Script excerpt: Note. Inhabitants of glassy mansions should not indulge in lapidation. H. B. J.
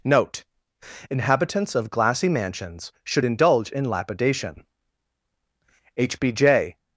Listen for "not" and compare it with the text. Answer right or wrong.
wrong